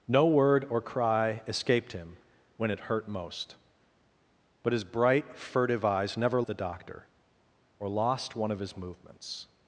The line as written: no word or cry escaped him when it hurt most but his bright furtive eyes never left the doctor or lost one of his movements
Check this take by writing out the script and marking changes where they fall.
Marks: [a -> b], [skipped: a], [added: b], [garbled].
no word or cry escaped him when it hurt most but his bright furtive eyes never [skipped: left] the doctor or lost one of his movements